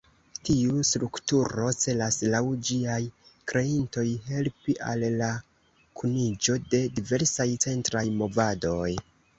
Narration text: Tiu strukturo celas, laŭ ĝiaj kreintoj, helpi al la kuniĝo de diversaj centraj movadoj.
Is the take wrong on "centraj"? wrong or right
right